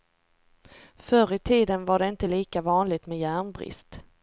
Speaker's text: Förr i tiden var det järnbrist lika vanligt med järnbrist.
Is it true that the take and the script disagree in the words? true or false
true